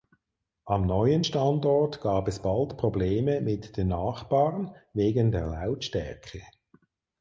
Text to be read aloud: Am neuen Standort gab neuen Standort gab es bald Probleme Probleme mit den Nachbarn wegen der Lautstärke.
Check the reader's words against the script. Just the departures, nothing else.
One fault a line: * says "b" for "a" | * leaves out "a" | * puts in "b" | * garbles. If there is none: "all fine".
* leaves out "neuen Standort gab"
* leaves out "Probleme"